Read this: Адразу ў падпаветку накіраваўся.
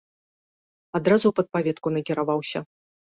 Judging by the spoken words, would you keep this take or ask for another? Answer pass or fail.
pass